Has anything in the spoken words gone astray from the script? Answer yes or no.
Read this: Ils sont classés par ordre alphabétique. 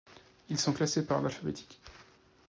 no